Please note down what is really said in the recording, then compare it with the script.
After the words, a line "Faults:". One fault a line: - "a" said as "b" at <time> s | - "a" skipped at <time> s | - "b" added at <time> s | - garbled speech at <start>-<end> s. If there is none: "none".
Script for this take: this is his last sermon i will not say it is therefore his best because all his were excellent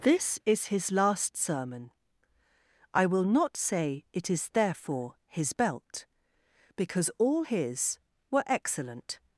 this is his last sermon i will not say it is therefore his belt because all his were excellent
Faults:
- "best" said as "belt" at 5.5 s